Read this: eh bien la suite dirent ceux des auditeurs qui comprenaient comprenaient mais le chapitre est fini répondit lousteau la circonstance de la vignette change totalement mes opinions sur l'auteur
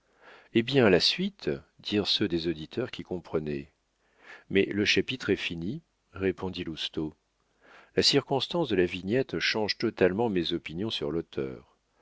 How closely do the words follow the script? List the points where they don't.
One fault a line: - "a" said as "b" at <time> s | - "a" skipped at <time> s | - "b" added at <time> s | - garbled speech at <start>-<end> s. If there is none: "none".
- "comprenaient" skipped at 3.7 s